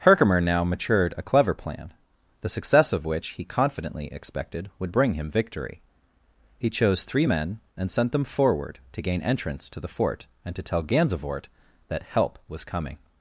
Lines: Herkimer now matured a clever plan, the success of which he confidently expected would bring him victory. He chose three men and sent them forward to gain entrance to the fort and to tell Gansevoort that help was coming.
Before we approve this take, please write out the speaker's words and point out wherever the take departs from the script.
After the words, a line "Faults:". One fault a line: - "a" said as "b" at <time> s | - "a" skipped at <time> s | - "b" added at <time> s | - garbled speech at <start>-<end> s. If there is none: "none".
Herkimer now matured a clever plan, the success of which he confidently expected would bring him victory. He chose three men and sent them forward to gain entrance to the fort and to tell Gansevoort that help was coming.
Faults:
none